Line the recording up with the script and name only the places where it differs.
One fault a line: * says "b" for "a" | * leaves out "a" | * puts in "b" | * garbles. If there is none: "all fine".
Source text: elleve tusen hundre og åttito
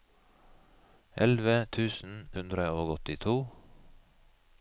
all fine